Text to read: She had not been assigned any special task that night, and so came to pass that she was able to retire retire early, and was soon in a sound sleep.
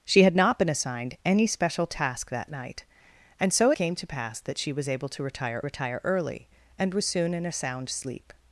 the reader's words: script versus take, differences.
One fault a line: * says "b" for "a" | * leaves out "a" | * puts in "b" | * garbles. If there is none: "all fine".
all fine